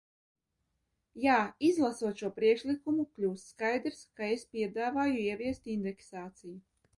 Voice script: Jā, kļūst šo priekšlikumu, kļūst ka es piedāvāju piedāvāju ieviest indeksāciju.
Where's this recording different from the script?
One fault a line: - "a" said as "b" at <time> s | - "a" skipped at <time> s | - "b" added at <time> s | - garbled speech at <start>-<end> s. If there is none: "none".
- "kļūst" said as "izlasot" at 1.7 s
- "skaidrs" added at 3.5 s
- "piedāvāju" skipped at 5.2 s